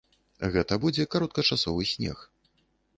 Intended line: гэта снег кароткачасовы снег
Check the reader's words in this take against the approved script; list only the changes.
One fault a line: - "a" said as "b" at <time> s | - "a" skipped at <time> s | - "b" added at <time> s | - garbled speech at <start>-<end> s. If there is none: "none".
- "снег" said as "будзе" at 0.9 s